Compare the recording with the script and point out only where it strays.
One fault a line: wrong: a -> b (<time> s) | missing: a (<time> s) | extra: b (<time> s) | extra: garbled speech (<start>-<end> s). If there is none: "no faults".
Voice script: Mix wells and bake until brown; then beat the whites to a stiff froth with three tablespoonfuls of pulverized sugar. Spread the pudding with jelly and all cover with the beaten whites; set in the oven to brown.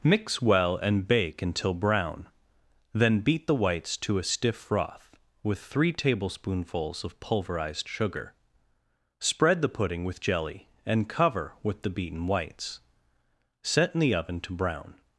wrong: wells -> well (0.4 s)
missing: all (11.1 s)